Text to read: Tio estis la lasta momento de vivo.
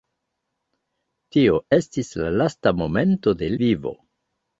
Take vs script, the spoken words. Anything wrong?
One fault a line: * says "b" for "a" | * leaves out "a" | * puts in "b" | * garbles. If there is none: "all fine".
all fine